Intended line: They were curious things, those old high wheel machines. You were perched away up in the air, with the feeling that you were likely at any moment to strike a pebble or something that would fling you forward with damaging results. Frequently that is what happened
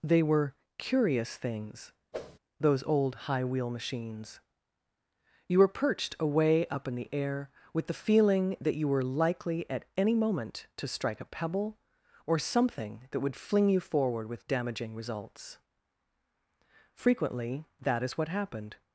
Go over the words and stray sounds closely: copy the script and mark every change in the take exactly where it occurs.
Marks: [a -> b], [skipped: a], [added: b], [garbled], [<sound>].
They were curious things, [whoosh] those old high wheel machines. You were perched away up in the air, with the feeling that you were likely at any moment to strike a pebble or something that would fling you forward with damaging results. Frequently that is what happened